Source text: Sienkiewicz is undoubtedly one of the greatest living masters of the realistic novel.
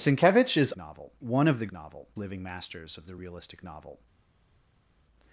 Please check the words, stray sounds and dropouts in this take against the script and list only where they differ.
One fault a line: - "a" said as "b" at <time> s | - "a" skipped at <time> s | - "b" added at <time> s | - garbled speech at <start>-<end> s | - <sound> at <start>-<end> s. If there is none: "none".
- "undoubtedly" said as "novel" at 0.7 s
- "greatest" said as "novel" at 1.7 s